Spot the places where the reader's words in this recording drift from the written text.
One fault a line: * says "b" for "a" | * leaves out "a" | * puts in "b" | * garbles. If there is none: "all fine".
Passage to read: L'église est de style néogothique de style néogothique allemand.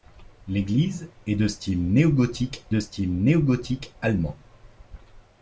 all fine